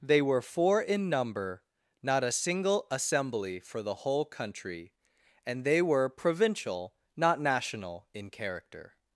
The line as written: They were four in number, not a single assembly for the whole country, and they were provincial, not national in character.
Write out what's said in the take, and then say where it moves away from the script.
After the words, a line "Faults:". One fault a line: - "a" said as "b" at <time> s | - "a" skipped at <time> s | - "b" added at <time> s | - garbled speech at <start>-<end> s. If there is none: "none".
They were four in number, not a single assembly for the whole country, and they were provincial, not national in character.
Faults:
none